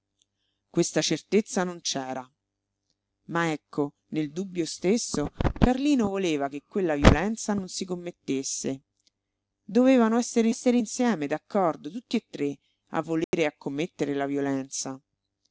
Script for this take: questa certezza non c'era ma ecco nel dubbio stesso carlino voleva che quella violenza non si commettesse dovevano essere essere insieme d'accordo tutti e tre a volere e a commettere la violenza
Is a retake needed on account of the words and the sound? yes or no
yes